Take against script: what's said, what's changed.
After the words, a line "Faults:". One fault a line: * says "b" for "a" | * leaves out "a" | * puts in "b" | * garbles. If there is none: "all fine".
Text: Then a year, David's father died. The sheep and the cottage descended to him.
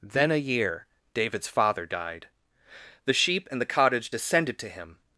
Then a year, David's father died. The sheep and the cottage descended to him.
Faults:
all fine